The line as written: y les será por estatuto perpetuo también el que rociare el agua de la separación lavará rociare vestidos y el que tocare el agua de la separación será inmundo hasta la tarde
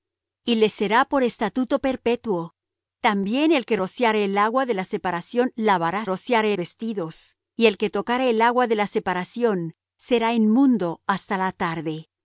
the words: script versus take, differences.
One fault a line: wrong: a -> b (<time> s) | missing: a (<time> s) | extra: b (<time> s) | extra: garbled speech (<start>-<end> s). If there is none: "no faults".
no faults